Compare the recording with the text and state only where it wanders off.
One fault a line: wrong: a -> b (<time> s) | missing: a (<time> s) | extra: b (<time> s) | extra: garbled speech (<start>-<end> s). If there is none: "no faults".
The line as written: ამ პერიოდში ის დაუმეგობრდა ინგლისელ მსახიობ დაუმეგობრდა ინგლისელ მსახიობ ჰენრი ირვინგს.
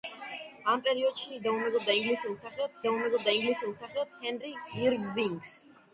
no faults